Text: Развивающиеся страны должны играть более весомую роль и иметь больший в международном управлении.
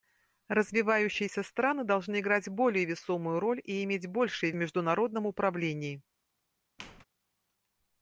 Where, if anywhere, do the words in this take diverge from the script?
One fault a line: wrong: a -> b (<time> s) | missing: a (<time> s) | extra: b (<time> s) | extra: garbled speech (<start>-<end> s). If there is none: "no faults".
no faults